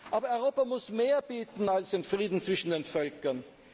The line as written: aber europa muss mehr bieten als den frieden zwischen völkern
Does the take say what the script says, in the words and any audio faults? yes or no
no